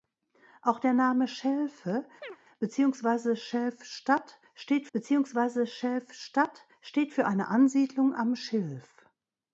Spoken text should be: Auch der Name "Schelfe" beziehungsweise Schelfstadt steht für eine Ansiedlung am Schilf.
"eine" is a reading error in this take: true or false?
false